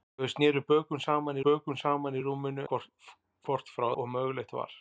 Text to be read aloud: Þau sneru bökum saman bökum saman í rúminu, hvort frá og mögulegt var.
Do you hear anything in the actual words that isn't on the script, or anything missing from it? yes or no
no